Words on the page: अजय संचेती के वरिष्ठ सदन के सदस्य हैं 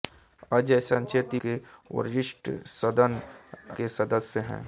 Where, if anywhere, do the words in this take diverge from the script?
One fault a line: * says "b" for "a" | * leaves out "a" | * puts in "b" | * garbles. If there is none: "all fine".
all fine